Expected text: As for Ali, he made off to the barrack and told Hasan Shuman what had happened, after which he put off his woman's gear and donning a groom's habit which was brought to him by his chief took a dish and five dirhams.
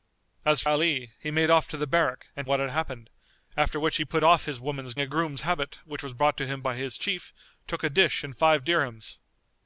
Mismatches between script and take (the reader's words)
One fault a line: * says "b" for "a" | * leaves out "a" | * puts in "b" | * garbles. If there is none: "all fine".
* leaves out "for"
* leaves out "told Hasan Shuman"
* leaves out "gear and donning"